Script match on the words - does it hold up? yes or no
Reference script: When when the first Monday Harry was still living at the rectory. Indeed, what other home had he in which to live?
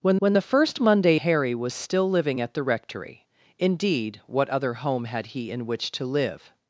yes